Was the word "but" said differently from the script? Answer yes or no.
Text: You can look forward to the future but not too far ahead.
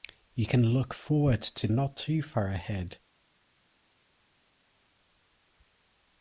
yes